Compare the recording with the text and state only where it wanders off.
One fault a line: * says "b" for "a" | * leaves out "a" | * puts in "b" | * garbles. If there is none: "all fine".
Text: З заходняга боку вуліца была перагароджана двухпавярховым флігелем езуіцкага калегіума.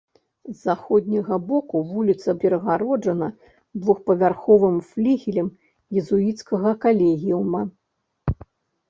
* leaves out "была"